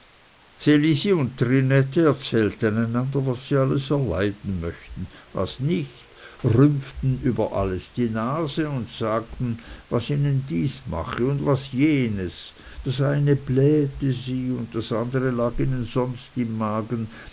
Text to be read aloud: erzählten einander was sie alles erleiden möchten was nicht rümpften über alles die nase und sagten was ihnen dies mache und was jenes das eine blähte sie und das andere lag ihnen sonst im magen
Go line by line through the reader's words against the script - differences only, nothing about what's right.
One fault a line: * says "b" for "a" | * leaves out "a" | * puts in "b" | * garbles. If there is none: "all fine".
all fine